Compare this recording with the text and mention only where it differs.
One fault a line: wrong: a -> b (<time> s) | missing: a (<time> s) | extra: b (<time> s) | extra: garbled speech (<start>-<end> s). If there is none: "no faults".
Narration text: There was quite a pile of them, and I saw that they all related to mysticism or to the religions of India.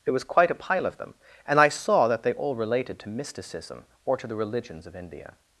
no faults